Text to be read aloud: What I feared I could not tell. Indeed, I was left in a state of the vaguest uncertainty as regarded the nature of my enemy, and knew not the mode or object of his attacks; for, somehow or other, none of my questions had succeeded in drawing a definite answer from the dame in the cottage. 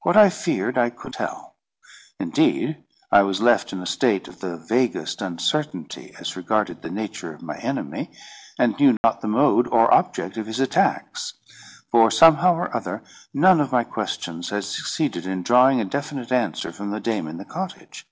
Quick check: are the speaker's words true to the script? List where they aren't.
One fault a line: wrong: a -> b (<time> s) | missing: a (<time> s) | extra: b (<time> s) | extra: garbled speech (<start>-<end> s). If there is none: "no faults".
missing: not (1.1 s)